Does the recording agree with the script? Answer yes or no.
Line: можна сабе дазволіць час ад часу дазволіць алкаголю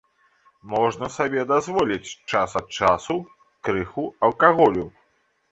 no